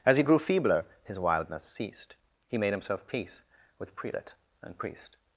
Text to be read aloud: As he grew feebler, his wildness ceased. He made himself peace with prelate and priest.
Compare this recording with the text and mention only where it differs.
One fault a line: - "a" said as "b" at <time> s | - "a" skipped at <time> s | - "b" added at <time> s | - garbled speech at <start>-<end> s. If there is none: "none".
none